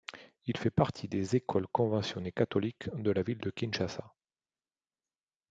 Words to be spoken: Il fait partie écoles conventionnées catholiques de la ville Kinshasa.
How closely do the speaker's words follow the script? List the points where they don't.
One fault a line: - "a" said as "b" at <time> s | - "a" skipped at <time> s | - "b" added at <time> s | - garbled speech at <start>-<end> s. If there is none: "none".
- "des" added at 1.1 s
- "de" added at 3.4 s